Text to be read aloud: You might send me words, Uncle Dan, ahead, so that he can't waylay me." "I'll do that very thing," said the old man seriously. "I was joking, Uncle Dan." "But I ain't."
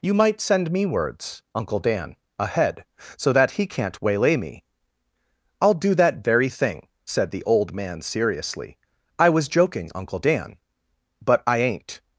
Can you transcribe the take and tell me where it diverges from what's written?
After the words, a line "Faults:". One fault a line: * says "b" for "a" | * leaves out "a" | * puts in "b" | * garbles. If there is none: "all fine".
You might send me words, Uncle Dan, ahead, so that he can't waylay me." "I'll do that very thing," said the old man seriously. "I was joking, Uncle Dan." "But I ain't."
Faults:
all fine